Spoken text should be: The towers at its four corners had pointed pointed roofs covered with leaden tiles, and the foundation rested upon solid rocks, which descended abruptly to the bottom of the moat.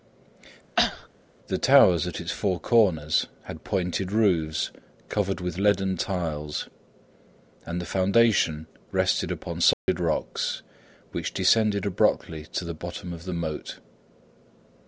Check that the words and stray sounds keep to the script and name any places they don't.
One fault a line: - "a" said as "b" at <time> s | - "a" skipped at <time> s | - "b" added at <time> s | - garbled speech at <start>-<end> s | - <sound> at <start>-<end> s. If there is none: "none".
- cough at 0.8-1.1 s
- "pointed" skipped at 4.1 s
- dropout at 9.7-9.9 s